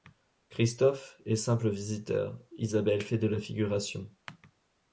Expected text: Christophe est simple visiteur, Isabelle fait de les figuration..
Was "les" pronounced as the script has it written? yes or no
no